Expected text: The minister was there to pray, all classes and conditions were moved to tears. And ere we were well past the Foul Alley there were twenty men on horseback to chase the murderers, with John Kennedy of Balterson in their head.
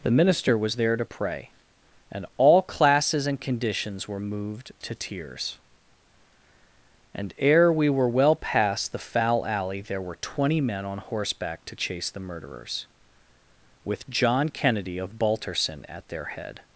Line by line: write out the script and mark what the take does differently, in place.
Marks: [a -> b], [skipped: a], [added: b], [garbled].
The minister was there to pray, [added: and] all classes and conditions were moved to tears. And ere we were well past the Foul Alley there were twenty men on horseback to chase the murderers, with John Kennedy of Balterson [in -> at] their head.